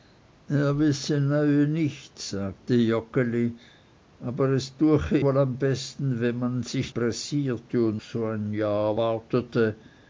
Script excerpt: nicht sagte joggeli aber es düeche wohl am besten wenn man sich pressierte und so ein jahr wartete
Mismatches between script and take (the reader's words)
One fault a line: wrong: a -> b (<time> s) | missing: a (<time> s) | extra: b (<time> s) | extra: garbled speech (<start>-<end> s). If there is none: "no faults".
no faults